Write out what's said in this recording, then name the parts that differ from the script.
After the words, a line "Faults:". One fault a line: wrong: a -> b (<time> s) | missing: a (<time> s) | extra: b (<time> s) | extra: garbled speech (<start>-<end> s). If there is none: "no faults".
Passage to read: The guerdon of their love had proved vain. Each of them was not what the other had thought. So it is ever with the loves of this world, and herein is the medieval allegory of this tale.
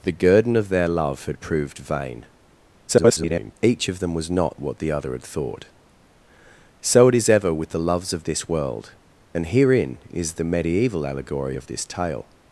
The guerdon of their love had proved vain. [garbled] Each of them was not what the other had thought. So it is ever with the loves of this world, and herein is the medieval allegory of this tale.
Faults:
extra: garbled speech (2.9-3.5 s)